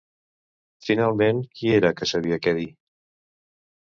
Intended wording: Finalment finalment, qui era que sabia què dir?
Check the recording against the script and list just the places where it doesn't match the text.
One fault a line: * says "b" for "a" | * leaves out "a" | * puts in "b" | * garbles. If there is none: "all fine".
* leaves out "finalment"